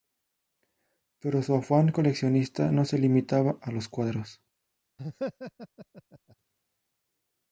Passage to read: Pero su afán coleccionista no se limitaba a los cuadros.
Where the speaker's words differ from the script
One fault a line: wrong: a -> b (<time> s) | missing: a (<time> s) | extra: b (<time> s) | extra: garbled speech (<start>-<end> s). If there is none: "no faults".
no faults